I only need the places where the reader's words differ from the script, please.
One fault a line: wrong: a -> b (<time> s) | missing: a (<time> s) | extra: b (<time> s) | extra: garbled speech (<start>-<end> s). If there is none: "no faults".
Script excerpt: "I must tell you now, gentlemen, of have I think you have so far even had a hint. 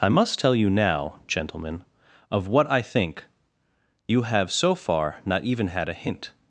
wrong: have -> what (2.5 s)
extra: not (5.2 s)